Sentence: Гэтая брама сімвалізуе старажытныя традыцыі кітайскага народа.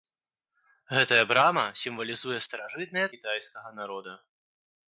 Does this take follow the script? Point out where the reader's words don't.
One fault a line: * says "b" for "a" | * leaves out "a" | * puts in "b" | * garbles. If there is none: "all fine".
* leaves out "традыцыі"